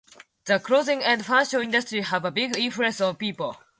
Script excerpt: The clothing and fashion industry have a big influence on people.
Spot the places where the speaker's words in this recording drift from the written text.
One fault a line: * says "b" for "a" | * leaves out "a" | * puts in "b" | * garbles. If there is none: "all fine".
all fine